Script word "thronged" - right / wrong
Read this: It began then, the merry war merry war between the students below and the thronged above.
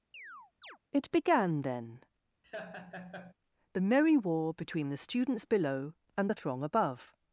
wrong